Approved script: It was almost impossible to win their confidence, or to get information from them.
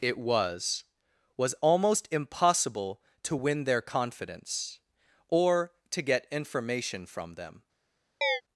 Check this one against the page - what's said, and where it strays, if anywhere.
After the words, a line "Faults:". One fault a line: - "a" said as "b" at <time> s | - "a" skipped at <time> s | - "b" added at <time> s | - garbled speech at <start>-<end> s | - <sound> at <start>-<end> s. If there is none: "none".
It was was almost impossible to win their confidence, or to get information from them.
Faults:
- "was" added at 1.4 s
- chirp at 8.2-8.4 s